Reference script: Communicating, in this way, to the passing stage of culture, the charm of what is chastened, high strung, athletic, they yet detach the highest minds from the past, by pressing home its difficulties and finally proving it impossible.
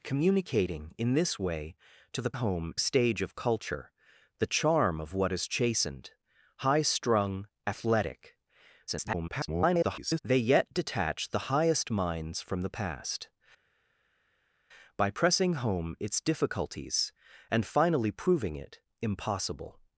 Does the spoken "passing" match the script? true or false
false